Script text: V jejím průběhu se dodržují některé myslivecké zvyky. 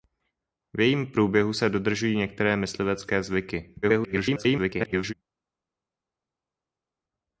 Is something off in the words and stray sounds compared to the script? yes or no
yes